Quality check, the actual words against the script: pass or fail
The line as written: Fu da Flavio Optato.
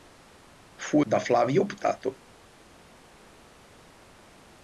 pass